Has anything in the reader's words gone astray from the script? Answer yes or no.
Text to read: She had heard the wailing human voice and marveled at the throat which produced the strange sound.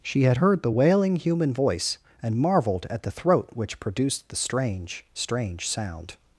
yes